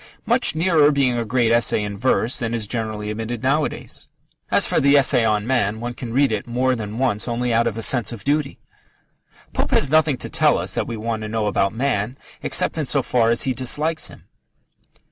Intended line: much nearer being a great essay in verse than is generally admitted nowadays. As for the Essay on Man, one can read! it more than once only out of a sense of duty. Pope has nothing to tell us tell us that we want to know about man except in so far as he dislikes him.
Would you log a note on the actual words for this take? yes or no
yes